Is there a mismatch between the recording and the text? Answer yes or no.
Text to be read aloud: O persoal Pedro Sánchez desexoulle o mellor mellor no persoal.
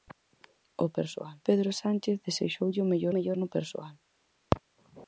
no